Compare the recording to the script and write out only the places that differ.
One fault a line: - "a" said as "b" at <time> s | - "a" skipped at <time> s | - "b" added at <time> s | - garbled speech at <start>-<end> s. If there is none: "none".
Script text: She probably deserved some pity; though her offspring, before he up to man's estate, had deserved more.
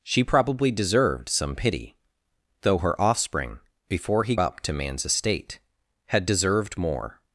none